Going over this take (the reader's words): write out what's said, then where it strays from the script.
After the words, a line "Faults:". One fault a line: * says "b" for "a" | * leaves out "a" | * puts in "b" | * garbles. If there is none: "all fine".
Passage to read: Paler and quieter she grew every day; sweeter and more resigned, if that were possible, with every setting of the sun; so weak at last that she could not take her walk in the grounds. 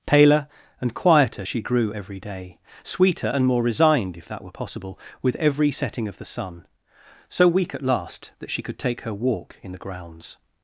Paler and quieter she grew every day; sweeter and more resigned, if that were possible, with every setting of the sun; so weak at last that she could take her walk in the grounds.
Faults:
* leaves out "not"